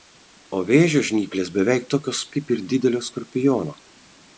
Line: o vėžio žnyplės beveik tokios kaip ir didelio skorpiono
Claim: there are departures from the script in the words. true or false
false